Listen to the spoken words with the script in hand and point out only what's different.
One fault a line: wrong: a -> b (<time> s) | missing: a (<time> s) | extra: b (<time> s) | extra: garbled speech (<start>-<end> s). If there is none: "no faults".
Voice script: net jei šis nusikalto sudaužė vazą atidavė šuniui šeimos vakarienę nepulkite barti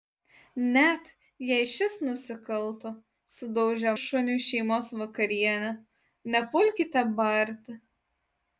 missing: vazą atidavė (3.9 s)